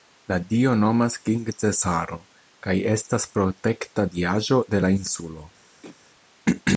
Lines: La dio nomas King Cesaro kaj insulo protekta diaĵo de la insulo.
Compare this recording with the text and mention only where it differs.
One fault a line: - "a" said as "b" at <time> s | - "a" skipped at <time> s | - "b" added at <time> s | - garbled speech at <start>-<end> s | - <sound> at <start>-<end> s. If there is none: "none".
- "insulo" said as "estas" at 3.0 s
- throat clearing at 5.8-6.0 s